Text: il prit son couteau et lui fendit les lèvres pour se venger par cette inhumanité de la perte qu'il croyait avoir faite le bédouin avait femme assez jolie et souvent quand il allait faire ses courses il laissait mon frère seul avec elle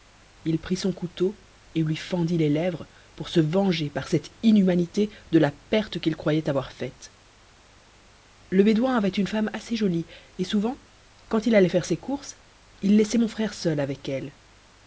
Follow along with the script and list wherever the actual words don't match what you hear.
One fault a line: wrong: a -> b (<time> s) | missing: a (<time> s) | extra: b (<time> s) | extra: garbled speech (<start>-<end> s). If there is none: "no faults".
extra: une (9.1 s)